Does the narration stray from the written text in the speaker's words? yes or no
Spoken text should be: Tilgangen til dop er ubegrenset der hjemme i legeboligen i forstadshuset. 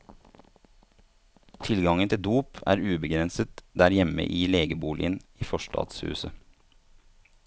no